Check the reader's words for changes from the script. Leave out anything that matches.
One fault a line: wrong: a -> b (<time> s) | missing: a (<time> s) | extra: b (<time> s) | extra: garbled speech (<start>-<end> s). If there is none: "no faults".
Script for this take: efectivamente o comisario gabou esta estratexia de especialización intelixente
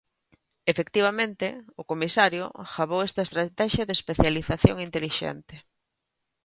no faults